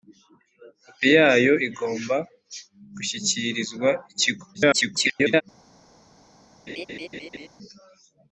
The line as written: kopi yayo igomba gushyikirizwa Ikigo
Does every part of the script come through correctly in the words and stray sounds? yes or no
no